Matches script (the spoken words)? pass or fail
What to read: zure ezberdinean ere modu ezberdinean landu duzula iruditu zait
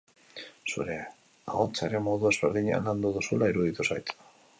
fail